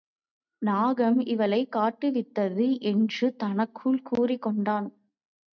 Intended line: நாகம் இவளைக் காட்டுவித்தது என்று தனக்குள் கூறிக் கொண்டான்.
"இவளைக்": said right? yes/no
yes